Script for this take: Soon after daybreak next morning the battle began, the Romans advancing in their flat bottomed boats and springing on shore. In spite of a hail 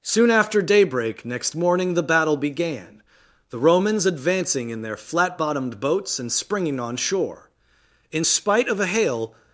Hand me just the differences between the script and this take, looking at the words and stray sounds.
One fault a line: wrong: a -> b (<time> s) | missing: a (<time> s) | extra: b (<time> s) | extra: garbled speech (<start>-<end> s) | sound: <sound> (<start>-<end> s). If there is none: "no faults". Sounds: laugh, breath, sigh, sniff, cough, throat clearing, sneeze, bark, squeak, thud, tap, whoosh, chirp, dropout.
no faults